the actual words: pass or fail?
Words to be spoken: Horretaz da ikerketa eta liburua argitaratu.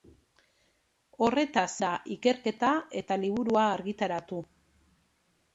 pass